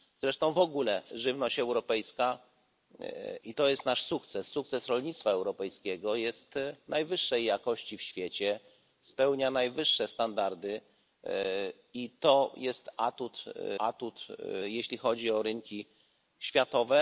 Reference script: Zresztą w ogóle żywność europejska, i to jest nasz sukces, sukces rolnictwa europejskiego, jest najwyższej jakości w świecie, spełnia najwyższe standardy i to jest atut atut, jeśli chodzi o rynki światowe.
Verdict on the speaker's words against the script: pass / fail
pass